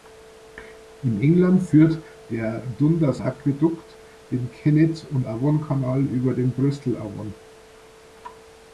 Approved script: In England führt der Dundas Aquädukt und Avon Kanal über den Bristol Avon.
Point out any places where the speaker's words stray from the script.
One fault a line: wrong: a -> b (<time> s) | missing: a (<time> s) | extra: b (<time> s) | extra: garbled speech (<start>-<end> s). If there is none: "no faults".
extra: den Kennet (4.3 s)